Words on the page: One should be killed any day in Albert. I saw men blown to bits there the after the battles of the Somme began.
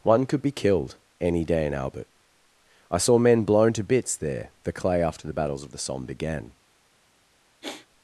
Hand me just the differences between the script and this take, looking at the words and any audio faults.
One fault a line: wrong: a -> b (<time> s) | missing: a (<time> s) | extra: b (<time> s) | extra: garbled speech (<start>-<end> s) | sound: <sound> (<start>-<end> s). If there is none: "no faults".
wrong: should -> could (0.2 s)
extra: clay (4.7 s)
sound: sigh (7.6-7.9 s)